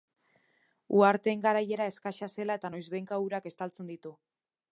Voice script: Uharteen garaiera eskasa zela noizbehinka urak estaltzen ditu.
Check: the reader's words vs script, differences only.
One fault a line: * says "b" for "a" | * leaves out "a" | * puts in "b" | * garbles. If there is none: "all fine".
* puts in "eta"